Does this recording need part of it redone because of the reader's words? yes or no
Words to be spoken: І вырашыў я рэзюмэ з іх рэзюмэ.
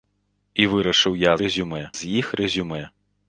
no